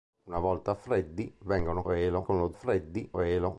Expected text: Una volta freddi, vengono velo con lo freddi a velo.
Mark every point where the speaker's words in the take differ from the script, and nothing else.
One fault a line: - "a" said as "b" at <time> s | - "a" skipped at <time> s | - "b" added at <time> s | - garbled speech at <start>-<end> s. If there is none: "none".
none